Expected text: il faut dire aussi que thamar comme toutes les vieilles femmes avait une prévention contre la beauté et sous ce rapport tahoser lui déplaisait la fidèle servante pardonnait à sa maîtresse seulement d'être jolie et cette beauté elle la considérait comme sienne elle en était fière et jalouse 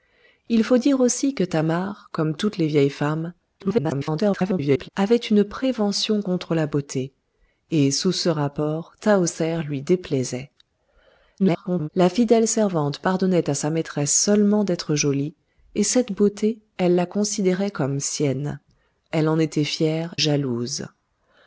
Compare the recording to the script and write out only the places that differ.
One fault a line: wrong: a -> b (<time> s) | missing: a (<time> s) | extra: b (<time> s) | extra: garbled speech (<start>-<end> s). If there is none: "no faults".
extra: garbled speech (3.6-4.9 s)
extra: garbled speech (11.4-11.9 s)
missing: et (20.1 s)